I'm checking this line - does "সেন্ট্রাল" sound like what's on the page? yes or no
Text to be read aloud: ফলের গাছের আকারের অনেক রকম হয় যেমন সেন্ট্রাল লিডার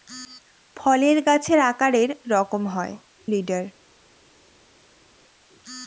no